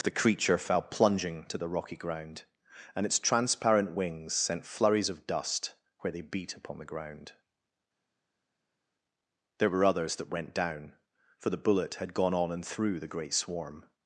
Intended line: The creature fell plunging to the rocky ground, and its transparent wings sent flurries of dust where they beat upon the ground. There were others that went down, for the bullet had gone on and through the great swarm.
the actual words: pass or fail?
pass